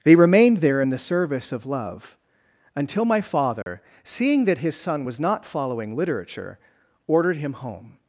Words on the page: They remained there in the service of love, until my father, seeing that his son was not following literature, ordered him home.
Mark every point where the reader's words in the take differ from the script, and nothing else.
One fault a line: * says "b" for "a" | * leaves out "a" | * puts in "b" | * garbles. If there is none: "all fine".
all fine